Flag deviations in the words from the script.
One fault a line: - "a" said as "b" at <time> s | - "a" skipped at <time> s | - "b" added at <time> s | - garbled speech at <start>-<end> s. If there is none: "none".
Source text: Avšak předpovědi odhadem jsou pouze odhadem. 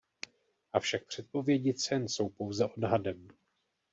- "odhadem" said as "cen" at 1.7 s